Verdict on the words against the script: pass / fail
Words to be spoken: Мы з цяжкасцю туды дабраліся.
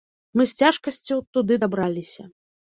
pass